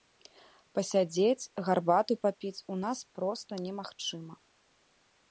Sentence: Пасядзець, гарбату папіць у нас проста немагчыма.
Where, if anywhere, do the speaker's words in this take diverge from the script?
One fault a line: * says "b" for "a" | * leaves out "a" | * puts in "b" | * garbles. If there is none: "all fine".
all fine